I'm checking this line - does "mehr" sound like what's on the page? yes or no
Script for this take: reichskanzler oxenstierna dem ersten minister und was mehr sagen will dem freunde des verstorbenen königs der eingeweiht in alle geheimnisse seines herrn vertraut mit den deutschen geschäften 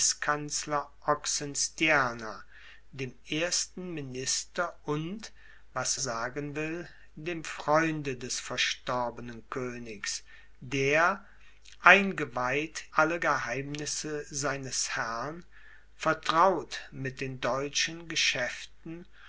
no